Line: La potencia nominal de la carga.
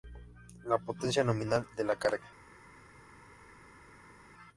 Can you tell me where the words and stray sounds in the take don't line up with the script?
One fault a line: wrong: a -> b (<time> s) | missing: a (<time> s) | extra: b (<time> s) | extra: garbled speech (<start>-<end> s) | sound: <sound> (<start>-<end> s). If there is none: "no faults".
no faults